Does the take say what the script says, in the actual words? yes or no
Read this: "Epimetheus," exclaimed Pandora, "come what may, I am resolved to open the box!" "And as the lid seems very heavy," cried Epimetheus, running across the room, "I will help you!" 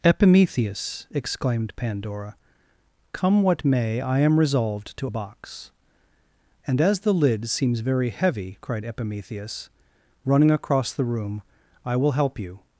no